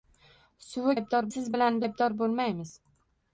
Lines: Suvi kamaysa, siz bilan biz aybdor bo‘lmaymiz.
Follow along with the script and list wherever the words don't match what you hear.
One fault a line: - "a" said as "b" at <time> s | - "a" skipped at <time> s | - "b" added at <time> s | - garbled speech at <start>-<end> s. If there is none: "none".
- "kamaysa" said as "aybdor" at 1.0 s
- "biz" skipped at 1.8 s